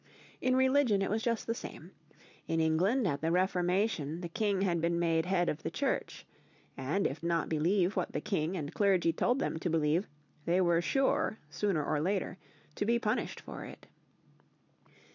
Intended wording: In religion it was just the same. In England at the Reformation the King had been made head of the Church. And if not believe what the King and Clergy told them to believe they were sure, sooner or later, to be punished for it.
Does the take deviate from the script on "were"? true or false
false